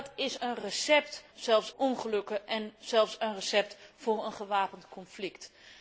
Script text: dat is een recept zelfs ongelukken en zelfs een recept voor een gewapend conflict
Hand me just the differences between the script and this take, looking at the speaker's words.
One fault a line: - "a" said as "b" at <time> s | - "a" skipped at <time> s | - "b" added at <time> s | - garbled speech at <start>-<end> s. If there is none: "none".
none